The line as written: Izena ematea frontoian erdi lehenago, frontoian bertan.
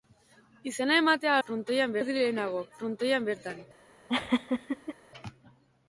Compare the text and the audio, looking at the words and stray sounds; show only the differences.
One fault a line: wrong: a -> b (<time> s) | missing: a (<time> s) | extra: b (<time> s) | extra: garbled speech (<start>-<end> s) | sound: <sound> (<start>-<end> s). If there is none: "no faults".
sound: laugh (4.1-4.9 s)